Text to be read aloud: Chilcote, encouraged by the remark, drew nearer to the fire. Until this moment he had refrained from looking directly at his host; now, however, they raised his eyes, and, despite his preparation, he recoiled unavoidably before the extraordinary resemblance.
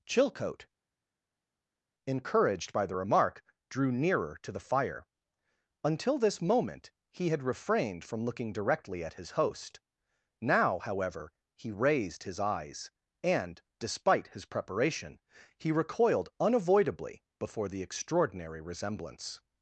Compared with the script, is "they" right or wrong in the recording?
wrong